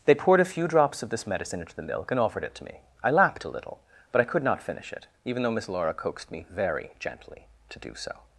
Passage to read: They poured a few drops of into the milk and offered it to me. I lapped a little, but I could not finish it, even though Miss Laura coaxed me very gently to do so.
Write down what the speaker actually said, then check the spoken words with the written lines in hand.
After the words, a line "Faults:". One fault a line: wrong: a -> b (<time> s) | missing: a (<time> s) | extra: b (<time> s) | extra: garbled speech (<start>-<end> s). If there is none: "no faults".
They poured a few drops of this medicine into the milk and offered it to me. I lapped a little, but I could not finish it, even though Miss Laura coaxed me very gently to do so.
Faults:
extra: this medicine (1.1 s)